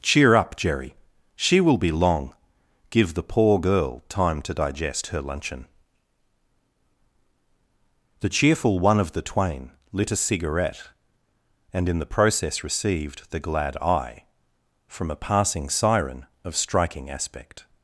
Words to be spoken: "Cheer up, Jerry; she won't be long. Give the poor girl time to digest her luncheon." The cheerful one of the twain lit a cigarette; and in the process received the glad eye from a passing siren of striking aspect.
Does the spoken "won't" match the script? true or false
false